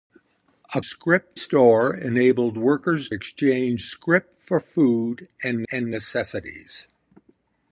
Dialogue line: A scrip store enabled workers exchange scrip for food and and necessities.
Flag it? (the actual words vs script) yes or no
no